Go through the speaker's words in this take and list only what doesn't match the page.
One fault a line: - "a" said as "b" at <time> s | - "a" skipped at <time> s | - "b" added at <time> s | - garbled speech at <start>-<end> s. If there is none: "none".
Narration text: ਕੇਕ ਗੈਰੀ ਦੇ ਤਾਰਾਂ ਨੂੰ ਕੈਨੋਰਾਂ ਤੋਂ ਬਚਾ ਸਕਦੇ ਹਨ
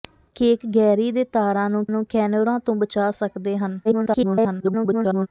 - "ਨੂੰ" added at 1.9 s
- garbled speech at 3.8-5.3 s